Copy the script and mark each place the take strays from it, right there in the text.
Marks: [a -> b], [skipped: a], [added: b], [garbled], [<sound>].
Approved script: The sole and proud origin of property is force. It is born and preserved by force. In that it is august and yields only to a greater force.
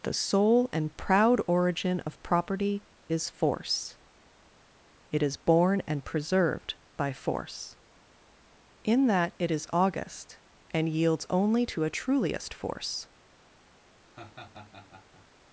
The sole and proud origin of property is force. It is born and preserved by force. In that it is august and yields only to a [greater -> truliest] force. [laugh]